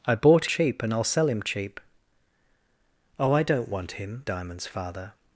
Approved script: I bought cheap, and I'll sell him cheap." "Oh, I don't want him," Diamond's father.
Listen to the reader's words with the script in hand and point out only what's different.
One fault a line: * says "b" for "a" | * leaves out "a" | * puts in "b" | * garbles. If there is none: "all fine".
all fine